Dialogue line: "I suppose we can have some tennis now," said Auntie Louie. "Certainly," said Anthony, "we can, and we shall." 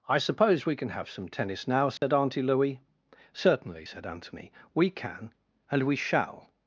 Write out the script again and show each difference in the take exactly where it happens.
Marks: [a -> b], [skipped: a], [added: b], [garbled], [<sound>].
"I suppose we can have some tennis now," said [dropout] Auntie Louie. "Certainly," said Anthony, "we can, and we shall."